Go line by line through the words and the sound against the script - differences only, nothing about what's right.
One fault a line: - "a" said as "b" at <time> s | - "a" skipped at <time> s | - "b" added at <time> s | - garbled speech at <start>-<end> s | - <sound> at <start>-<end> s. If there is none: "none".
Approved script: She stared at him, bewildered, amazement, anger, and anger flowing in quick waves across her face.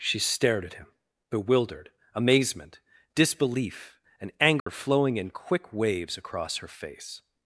- "anger" said as "disbelief" at 3.1 s
- dropout at 4.6-4.7 s